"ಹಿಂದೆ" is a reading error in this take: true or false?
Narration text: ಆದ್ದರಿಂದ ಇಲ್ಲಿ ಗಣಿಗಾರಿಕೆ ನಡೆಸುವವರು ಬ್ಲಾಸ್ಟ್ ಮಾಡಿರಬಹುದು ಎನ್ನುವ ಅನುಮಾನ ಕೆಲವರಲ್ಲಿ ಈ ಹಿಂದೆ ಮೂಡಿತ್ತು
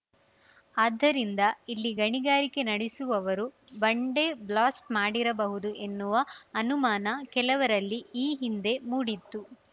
false